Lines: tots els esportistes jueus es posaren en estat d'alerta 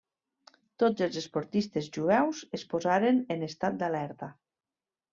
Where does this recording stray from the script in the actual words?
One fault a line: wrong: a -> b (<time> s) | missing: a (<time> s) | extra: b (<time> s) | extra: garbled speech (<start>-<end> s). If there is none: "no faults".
no faults